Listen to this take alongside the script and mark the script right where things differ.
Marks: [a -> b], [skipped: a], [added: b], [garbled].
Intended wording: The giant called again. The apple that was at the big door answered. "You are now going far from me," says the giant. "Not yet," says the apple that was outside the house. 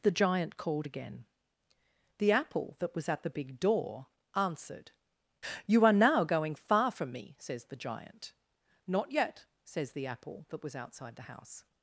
The giant called again. The apple that was at the big door answered. "You are now going far from me," says the giant. "Not yet," says the apple that was outside the house.